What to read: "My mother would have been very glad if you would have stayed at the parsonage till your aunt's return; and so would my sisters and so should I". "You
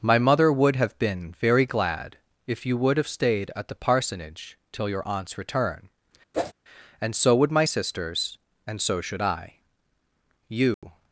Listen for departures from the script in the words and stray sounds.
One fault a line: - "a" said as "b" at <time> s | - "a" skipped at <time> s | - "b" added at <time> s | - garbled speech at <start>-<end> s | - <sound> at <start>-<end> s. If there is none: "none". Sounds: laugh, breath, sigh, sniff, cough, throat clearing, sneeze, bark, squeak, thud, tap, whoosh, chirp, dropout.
- whoosh at 6.3-6.5 s
- dropout at 10.7-10.8 s